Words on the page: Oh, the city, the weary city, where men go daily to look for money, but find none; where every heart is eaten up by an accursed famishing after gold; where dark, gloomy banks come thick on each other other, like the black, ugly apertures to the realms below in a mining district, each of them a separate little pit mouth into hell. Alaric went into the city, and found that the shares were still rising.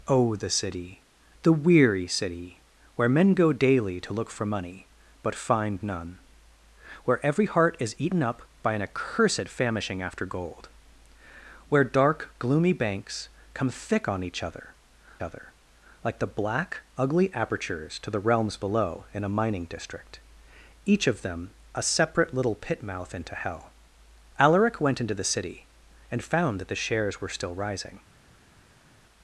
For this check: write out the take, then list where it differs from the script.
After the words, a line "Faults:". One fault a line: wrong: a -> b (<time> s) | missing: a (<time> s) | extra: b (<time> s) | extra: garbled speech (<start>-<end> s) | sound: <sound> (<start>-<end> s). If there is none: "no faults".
Oh, the city, the weary city, where men go daily to look for money, but find none; where every heart is eaten up by an accursed famishing after gold; where dark, gloomy banks come thick on each other other, like the black, ugly apertures to the realms below in a mining district, each of them a separate little pit mouth into hell. Alaric went into the city, and found that the shares were still rising.
Faults:
no faults